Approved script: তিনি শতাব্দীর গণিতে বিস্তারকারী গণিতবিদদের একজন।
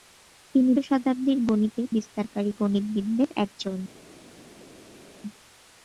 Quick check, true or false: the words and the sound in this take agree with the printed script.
true